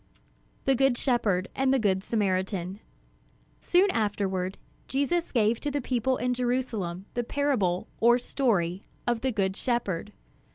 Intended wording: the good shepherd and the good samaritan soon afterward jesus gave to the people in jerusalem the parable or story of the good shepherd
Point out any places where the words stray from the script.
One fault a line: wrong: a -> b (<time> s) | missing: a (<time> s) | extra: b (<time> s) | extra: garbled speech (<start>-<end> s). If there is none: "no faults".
no faults